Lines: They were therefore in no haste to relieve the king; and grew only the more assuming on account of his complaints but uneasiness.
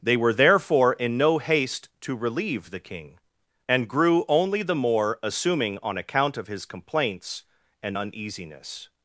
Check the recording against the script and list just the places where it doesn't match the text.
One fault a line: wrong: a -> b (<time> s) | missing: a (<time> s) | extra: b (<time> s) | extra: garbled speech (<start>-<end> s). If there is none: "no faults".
wrong: but -> and (7.8 s)